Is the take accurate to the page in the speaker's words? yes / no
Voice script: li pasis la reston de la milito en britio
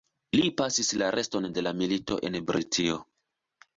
yes